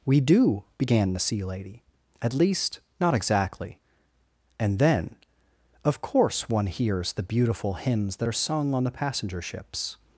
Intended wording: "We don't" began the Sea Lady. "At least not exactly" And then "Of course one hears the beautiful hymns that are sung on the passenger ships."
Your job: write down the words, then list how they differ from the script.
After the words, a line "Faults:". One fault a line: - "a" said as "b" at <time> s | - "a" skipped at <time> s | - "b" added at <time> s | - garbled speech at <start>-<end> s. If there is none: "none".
"We do" began the Sea Lady. "At least not exactly" And then "Of course one hears the beautiful hymns that are sung on the passenger ships."
Faults:
- "don't" said as "do" at 0.2 s